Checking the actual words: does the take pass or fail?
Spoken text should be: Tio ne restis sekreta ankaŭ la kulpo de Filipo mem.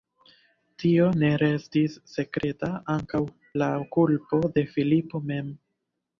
pass